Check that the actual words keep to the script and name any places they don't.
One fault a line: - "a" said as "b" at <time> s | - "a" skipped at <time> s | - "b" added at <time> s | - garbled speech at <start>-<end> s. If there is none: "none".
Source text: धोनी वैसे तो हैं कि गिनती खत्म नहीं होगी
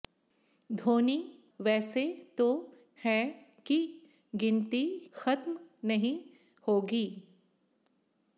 none